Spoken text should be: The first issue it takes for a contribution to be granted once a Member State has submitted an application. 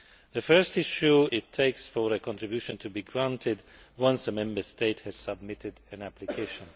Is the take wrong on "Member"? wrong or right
right